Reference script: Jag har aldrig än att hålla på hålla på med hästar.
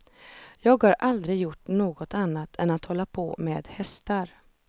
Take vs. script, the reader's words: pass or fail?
fail